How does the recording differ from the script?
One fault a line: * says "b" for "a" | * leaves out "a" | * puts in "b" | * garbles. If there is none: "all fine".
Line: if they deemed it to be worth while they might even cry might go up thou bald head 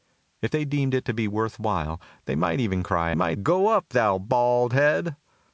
all fine